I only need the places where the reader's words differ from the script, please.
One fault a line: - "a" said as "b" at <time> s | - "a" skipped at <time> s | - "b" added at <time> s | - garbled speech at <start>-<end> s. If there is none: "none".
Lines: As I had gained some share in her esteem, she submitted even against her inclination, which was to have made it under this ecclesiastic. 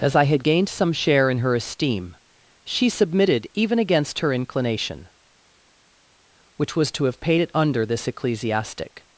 - "made" said as "paid" at 7.2 s